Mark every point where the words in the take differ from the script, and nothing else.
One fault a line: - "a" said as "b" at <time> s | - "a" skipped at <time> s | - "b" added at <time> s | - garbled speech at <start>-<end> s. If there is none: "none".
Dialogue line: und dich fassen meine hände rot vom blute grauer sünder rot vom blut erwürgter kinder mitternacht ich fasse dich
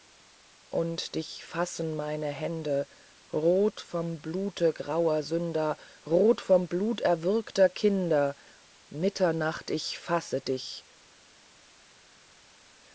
none